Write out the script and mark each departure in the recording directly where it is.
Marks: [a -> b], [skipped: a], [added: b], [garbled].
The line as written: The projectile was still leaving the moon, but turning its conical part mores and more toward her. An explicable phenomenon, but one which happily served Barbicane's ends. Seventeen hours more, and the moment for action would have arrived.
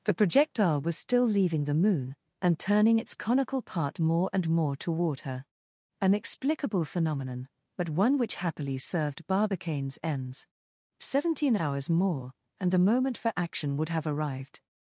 The projectile was still leaving the moon, [but -> and] turning its conical part [mores -> more] and more toward her. An explicable phenomenon, but one which happily served Barbicane's ends. Seventeen hours more, and the moment for action would have arrived.